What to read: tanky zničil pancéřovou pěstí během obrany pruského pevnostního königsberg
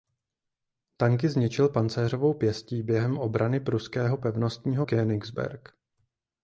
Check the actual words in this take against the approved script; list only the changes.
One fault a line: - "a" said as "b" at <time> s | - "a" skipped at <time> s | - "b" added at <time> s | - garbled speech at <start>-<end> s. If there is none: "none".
none